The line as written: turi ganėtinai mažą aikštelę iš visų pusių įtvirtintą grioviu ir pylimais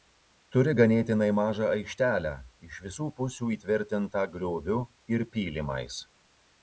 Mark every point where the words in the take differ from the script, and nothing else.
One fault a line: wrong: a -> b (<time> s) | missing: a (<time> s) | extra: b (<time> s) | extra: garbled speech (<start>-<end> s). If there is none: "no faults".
no faults